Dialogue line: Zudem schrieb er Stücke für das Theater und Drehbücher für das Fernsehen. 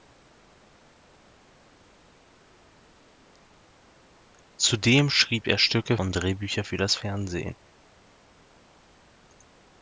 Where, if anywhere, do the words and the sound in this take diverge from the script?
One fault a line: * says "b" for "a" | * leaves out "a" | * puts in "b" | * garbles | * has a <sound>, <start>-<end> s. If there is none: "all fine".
* leaves out "für das Theater"